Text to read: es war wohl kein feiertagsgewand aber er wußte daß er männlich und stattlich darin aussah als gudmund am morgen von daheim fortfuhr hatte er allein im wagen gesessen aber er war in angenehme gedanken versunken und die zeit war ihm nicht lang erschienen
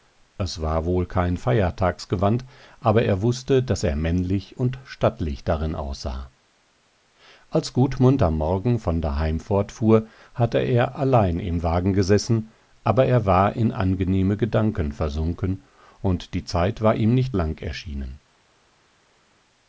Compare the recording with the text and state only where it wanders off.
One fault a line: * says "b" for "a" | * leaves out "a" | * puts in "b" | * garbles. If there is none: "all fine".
all fine